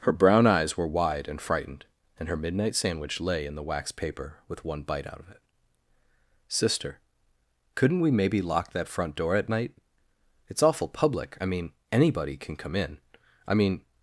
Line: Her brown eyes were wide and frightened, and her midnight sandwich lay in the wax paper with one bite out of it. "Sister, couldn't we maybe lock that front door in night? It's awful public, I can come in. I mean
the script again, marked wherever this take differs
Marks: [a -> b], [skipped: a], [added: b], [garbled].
Her brown eyes were wide and frightened, and her midnight sandwich lay in the wax paper with one bite out of it. "Sister, couldn't we maybe lock that front door [in -> at] night? It's awful public, I [added: mean anybody] can come in. I mean